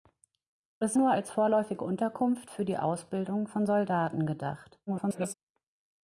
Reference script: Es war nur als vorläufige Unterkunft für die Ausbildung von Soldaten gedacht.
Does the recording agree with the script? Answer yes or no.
no